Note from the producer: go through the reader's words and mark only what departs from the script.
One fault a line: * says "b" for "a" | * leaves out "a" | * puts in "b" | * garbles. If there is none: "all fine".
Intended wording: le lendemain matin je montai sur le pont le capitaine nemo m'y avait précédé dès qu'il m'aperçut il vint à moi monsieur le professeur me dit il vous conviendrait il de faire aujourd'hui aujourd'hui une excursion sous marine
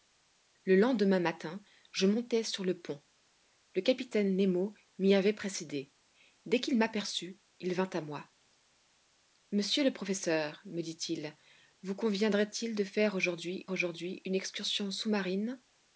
all fine